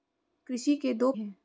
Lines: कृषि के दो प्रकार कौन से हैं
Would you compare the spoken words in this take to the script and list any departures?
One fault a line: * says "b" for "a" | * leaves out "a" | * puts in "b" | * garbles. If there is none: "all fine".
* leaves out "प्रकार कौन से"